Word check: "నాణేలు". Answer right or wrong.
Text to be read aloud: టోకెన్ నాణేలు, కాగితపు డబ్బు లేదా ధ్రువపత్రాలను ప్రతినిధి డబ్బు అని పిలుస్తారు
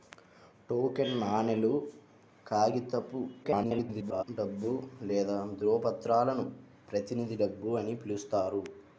right